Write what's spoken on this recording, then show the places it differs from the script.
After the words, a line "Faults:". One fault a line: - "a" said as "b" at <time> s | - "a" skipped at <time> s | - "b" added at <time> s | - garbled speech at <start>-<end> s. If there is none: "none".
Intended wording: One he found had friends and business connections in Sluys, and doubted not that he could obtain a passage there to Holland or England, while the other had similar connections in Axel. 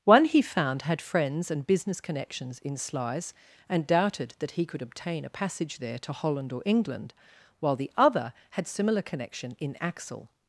One he found had friends and business connections in Sluys, and doubted that he could obtain a passage there to Holland or England, while the other had similar connection in Axel.
Faults:
- "not" skipped at 4.3 s
- "connections" said as "connection" at 9.0 s